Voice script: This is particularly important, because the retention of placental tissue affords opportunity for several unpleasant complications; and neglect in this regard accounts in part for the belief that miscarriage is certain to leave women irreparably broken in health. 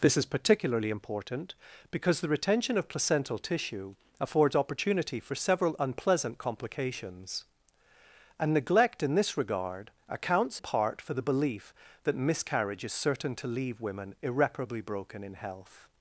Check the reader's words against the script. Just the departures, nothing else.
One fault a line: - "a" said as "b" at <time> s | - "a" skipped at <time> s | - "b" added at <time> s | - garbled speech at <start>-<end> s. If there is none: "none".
- "in" skipped at 10.6 s